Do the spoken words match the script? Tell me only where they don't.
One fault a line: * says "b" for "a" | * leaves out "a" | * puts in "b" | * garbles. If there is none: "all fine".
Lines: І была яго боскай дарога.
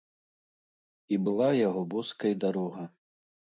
all fine